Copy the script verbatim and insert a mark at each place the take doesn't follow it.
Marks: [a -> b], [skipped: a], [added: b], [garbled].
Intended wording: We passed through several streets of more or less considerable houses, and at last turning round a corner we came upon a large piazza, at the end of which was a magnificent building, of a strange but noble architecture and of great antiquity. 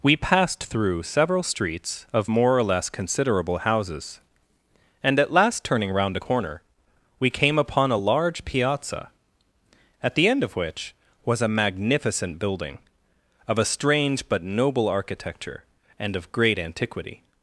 We passed through several streets of more or less considerable houses, and at last turning round a corner we came upon a large piazza, at the end of which was a magnificent building, of a strange but noble architecture and of great antiquity.